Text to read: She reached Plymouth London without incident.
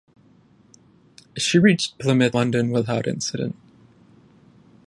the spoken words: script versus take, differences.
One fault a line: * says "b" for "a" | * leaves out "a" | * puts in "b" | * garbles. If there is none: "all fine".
all fine